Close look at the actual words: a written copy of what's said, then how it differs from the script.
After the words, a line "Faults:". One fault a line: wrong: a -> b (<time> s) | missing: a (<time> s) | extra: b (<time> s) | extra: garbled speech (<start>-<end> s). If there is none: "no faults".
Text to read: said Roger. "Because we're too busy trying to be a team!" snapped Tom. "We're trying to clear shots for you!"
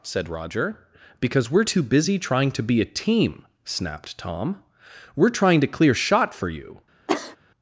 said Roger. "Because we're too busy trying to be a team!" snapped Tom. "We're trying to clear shot for you!"
Faults:
wrong: shots -> shot (5.9 s)